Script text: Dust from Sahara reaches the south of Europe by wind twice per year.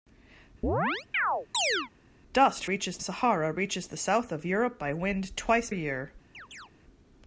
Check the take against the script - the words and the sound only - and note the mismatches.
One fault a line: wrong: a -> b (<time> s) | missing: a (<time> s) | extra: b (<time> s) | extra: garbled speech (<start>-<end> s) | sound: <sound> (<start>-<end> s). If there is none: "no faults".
sound: chirp (0.6-1.9 s)
wrong: from -> reaches (2.6 s)
missing: per (5.7 s)
sound: chirp (6.3-6.7 s)